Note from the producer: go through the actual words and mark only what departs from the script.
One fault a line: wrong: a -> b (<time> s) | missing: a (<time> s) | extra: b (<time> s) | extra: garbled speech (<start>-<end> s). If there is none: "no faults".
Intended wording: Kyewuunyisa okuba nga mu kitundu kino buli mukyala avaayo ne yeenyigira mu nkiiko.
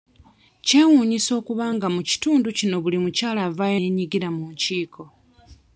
missing: ne (3.8 s)